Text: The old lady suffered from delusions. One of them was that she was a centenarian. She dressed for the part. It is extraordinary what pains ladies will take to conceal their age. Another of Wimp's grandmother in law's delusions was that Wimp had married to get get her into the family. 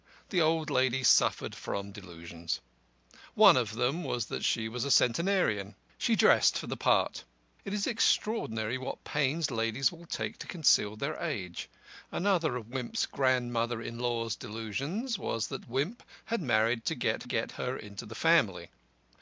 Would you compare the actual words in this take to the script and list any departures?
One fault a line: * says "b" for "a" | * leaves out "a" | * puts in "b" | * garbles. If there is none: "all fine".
all fine